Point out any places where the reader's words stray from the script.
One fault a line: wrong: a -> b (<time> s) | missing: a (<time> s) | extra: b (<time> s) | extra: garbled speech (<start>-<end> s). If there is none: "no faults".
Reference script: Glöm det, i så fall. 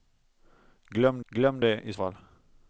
extra: glöm (1.3 s)
missing: så (1.9 s)